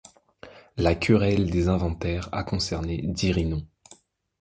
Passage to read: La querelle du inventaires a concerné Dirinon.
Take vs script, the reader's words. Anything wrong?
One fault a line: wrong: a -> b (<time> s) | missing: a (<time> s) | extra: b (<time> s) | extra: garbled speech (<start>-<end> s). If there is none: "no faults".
wrong: du -> des (1.5 s)